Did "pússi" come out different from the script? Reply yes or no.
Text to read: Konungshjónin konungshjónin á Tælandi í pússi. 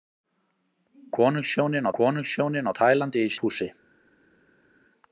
no